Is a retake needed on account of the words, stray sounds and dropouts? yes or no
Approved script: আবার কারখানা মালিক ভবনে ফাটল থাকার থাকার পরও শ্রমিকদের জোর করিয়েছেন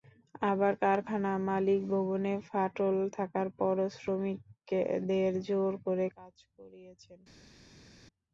yes